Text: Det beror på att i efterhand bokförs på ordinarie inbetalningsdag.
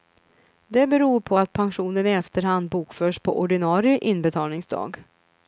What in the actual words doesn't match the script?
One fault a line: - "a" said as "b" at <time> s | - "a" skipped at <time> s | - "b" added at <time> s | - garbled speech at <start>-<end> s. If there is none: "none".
- "pensionen" added at 1.5 s